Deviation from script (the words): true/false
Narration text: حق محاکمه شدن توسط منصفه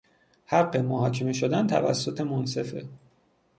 false